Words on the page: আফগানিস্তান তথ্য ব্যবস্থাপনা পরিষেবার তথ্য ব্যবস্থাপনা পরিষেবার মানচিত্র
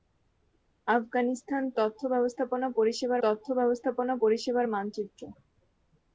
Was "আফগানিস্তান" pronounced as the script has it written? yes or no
yes